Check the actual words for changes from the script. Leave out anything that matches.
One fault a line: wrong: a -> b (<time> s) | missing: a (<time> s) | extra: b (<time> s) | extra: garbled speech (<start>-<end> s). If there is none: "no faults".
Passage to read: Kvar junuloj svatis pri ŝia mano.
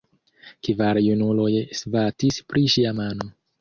no faults